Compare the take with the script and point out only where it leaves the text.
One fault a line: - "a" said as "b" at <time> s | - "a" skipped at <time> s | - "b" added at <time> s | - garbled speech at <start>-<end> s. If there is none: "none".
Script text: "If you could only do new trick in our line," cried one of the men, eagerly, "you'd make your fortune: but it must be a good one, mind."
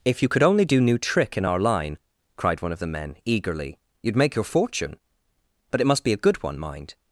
none